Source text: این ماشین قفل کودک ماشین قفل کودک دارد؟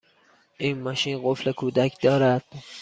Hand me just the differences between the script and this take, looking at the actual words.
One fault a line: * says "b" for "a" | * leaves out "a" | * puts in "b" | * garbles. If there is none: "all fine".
* leaves out "ماشین قفل کودک"